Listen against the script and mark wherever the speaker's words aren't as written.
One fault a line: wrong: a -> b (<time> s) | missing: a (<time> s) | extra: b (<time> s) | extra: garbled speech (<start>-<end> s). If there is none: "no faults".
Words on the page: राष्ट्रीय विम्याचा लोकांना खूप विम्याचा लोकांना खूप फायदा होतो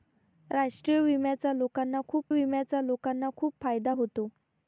no faults